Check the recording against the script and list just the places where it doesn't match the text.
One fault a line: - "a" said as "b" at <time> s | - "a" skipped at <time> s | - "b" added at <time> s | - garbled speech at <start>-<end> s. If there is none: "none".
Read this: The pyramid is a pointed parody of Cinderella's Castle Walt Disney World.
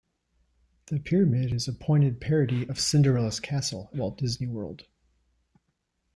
none